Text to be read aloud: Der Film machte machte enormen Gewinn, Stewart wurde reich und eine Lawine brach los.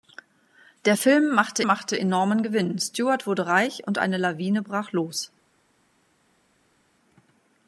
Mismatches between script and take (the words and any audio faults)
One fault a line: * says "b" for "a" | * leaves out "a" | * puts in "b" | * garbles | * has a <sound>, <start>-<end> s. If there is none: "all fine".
all fine